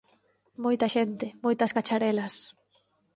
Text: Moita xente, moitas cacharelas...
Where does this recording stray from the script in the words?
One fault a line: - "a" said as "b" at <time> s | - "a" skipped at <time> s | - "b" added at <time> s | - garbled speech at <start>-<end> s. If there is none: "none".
none